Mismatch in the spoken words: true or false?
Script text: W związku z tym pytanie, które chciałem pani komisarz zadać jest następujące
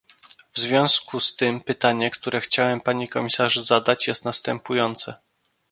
false